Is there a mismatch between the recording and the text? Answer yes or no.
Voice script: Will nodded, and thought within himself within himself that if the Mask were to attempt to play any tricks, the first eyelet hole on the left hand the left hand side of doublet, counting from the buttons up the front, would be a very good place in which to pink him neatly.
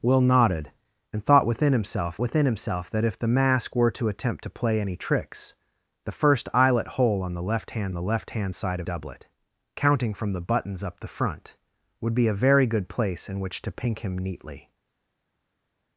no